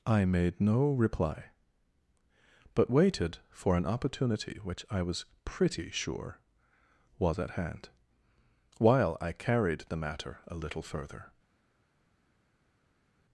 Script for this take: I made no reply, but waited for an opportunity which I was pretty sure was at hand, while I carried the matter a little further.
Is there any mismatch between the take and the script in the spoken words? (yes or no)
no